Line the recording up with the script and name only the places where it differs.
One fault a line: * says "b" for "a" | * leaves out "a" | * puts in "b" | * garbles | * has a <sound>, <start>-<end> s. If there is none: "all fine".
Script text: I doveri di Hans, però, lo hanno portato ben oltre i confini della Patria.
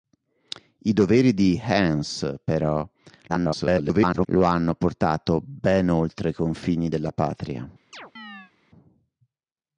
* garbles
* has a chirp, 7.9-8.5 s